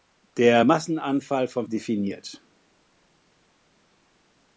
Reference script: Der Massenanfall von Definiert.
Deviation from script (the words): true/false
false